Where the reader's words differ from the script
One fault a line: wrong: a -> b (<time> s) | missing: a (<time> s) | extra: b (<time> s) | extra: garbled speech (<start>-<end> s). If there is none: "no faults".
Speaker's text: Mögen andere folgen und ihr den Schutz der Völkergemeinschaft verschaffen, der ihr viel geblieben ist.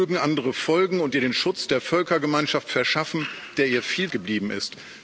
no faults